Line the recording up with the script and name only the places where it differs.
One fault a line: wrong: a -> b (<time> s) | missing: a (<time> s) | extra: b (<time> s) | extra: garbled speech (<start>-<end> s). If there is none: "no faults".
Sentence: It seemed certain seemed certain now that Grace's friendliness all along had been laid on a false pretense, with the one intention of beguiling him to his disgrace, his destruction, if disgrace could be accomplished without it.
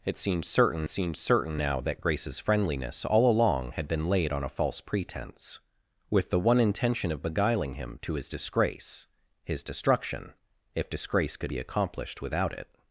no faults